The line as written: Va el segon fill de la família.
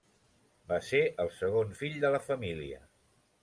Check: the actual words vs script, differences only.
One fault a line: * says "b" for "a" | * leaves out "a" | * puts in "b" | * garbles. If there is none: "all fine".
* puts in "ser"